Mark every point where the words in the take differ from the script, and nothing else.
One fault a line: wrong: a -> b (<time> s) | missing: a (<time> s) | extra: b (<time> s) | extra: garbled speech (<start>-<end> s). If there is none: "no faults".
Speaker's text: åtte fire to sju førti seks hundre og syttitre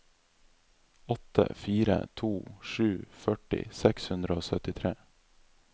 no faults